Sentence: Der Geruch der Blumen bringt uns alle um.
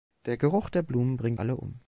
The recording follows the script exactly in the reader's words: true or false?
false